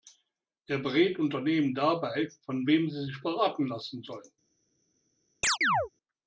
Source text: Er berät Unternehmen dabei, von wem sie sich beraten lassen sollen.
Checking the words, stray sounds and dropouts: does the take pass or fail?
fail